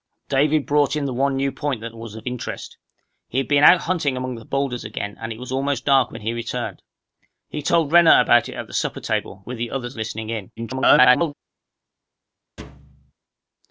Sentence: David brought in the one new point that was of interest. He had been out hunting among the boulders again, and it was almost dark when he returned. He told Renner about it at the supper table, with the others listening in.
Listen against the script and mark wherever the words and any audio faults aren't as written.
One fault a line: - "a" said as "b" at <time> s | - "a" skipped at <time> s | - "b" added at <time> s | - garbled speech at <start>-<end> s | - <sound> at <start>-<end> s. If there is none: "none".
- garbled speech at 10.6-11.3 s
- thud at 12.6-13.1 s